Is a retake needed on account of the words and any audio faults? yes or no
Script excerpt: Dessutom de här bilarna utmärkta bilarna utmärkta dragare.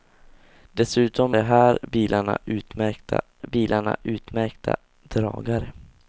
no